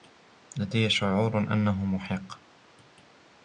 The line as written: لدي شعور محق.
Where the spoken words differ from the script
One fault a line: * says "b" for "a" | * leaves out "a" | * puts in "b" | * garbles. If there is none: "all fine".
* puts in "أنه"